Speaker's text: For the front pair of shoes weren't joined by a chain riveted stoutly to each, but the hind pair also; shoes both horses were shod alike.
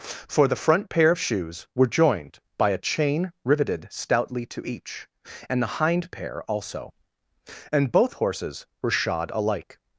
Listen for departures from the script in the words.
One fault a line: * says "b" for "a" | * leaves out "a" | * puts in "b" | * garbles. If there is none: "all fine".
* says "were" for "weren't"
* says "and" for "but"
* says "and" for "shoes"